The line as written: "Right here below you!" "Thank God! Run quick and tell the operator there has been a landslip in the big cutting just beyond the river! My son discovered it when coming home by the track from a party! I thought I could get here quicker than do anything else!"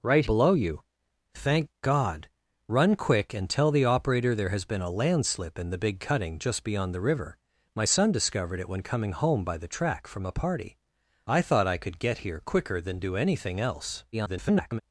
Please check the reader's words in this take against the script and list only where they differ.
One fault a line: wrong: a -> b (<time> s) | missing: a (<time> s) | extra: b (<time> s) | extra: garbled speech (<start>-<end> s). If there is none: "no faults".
missing: here (0.2 s)
extra: garbled speech (14.1-14.8 s)